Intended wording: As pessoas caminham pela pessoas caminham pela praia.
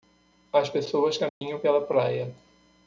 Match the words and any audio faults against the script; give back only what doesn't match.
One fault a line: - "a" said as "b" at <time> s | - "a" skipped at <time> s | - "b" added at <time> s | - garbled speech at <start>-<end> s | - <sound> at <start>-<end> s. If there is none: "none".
- dropout at 1.3-1.4 s
- "pessoas caminham pela" skipped at 1.8 s